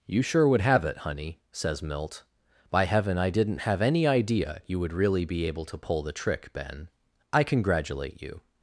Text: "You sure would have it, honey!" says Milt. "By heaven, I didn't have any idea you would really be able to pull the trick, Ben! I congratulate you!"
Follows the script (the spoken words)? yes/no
yes